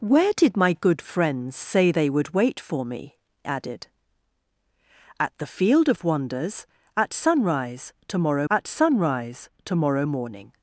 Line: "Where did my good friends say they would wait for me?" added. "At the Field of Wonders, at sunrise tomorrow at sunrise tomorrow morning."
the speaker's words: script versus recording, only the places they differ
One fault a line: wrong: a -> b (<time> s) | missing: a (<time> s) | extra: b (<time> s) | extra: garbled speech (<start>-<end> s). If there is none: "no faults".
no faults